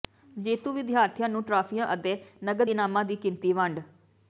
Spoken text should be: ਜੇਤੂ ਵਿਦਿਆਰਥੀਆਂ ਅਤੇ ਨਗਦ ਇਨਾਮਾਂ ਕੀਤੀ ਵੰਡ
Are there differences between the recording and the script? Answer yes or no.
yes